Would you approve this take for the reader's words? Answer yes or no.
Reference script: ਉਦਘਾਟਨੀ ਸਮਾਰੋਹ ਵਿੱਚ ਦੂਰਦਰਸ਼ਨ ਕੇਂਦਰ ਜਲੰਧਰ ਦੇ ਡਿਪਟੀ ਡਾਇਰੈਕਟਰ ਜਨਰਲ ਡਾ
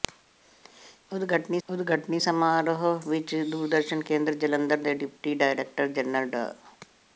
no